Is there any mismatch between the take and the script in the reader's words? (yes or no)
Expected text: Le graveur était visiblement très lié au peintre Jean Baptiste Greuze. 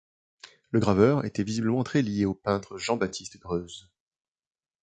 no